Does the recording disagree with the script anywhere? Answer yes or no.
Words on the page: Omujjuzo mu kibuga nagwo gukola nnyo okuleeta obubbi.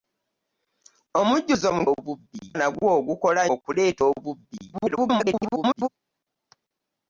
yes